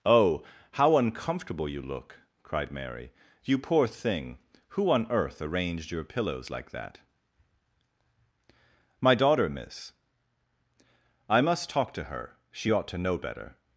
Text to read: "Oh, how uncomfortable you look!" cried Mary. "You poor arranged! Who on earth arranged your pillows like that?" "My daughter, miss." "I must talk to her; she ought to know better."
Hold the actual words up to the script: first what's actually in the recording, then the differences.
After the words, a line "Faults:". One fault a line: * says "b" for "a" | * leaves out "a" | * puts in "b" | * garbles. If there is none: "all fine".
"Oh, how uncomfortable you look!" cried Mary. "You poor thing! Who on earth arranged your pillows like that?" "My daughter, miss." "I must talk to her; she ought to know better."
Faults:
* says "thing" for "arranged"